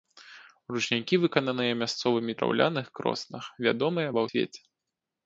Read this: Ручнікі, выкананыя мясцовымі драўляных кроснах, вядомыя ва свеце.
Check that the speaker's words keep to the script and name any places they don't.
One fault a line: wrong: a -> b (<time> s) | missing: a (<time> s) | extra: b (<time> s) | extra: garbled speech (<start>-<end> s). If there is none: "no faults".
no faults